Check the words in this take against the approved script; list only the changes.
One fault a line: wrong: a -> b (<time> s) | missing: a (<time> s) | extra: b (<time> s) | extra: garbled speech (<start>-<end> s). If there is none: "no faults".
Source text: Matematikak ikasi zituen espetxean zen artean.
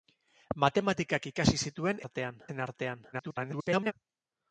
wrong: espetxean -> artean (2.0 s)
extra: garbled speech (3.1-3.9 s)